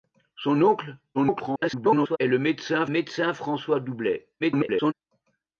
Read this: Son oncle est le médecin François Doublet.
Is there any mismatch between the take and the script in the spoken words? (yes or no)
yes